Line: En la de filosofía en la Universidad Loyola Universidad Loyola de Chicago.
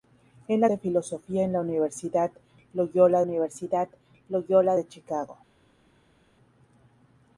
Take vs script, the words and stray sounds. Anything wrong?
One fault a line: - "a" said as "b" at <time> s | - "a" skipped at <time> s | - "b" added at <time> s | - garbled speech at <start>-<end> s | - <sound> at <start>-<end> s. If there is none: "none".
none